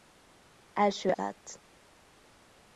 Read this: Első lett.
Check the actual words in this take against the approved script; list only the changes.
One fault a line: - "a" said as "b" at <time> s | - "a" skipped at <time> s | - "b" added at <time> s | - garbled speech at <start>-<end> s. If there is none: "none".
none